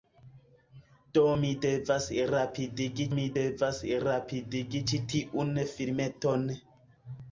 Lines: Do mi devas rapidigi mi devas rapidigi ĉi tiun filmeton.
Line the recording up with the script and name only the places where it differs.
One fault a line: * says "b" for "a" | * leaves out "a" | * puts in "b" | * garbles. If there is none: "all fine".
all fine